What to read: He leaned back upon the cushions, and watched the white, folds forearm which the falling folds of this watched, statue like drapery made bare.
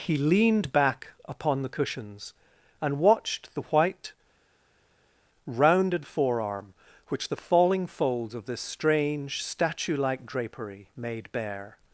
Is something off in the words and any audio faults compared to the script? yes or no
yes